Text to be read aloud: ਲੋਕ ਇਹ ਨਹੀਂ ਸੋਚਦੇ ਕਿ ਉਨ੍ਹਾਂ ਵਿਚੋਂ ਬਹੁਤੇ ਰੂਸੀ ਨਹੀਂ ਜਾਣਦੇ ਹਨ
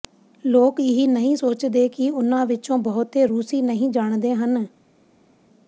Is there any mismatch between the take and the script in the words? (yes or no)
no